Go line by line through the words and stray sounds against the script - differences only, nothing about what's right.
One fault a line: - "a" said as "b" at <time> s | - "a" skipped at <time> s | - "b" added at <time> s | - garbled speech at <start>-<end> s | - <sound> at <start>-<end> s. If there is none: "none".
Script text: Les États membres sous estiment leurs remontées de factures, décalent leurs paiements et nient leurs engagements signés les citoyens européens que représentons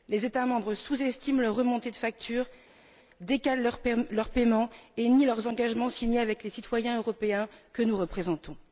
- "avec" added at 6.2 s
- "nous" added at 7.8 s